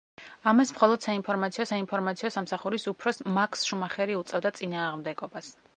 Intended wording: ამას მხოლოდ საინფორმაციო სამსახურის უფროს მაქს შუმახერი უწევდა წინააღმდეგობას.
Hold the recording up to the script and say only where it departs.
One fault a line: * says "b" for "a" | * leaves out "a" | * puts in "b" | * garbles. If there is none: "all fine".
* puts in "საინფორმაციო"